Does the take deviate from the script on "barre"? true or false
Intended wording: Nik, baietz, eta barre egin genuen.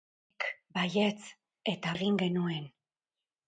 true